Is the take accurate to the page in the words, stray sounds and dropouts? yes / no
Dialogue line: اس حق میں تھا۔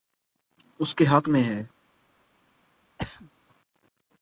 no